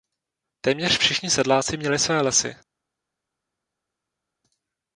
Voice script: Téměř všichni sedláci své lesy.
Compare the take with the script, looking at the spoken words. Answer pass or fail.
fail